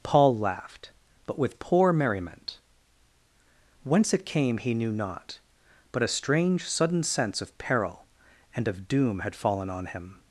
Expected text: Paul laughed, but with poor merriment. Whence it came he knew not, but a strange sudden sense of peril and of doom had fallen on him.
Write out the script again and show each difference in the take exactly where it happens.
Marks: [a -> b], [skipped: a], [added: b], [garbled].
Paul laughed, but with poor merriment. Whence it came he knew not, but a strange sudden sense of peril and of doom had fallen on him.